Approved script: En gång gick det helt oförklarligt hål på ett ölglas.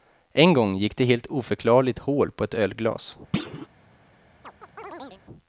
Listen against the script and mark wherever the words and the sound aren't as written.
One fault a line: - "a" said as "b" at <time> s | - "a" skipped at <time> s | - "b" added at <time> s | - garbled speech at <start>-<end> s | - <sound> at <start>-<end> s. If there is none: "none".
- thud at 3.3-3.7 s
- chirp at 4.4-5.2 s